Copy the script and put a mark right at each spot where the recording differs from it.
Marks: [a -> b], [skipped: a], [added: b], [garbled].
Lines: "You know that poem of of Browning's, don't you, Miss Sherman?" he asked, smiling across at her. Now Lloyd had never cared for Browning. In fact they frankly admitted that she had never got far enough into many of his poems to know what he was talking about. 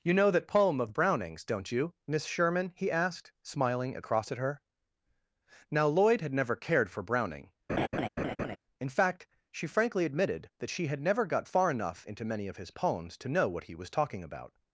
"You know that poem of [skipped: of] Browning's, don't you, Miss Sherman?" he asked, smiling across at her. Now Lloyd had never cared for Browning. In fact [they -> she] frankly admitted that she had never got far enough into many of his poems to know what he was talking about.